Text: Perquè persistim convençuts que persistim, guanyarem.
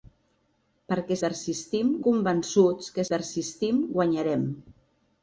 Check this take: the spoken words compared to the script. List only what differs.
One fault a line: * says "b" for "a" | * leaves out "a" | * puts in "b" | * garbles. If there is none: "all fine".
all fine